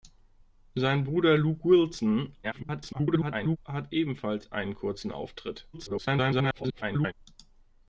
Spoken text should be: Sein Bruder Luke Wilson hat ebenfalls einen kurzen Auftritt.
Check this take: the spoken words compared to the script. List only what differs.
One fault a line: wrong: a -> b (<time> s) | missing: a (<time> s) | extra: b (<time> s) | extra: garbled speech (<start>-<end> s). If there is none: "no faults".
extra: garbled speech (2.4-3.6 s)
extra: garbled speech (5.7-7.1 s)